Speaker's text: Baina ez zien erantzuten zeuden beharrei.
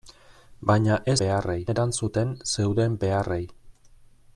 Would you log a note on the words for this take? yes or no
yes